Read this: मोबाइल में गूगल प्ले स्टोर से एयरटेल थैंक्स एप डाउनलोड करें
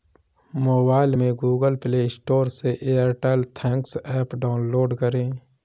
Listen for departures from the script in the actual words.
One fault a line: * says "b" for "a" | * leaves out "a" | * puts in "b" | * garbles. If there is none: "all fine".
all fine